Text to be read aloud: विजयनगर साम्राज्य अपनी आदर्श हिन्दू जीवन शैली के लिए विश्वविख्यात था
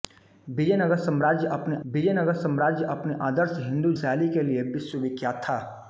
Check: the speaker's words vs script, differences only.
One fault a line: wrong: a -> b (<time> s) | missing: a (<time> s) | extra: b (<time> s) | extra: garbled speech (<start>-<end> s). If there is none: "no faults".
extra: विजयनगर साम्राज्य अपनी (1.9 s)
missing: जीवन (3.9 s)